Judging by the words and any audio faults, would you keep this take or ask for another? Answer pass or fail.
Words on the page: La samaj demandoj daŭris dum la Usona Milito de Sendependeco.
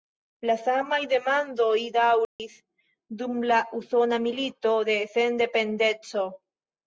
fail